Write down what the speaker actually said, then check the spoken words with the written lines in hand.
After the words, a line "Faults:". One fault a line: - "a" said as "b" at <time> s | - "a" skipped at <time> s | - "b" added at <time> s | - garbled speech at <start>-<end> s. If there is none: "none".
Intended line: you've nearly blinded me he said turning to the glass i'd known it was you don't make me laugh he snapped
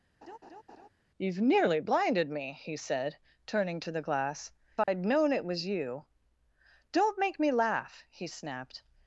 you've nearly blinded me he said turning to the glass i'd known it was you don't make me laugh he snapped
Faults:
none